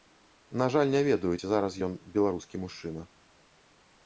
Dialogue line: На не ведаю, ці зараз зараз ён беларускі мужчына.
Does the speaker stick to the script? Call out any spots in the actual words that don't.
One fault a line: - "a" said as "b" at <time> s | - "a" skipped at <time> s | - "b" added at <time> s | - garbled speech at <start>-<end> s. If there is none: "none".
- "жаль" added at 0.8 s
- "зараз" skipped at 1.8 s